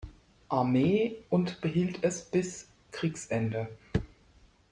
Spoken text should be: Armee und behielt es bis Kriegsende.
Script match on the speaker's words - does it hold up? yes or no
yes